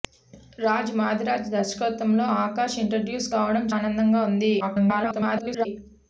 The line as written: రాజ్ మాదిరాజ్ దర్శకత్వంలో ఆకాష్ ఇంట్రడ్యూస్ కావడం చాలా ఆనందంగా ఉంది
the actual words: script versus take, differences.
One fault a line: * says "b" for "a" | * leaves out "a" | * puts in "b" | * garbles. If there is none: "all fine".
* leaves out "చాలా"
* garbles